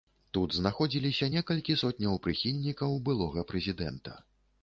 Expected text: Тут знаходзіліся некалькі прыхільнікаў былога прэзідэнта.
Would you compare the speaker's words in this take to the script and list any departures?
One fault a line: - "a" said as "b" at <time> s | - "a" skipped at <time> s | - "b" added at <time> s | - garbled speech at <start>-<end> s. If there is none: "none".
- "сотняў" added at 1.8 s